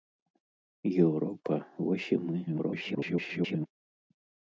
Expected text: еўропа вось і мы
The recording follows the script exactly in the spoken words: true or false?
false